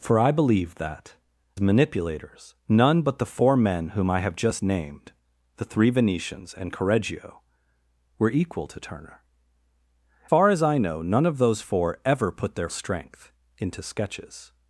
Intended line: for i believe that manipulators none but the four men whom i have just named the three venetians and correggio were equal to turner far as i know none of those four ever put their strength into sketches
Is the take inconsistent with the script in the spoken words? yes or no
no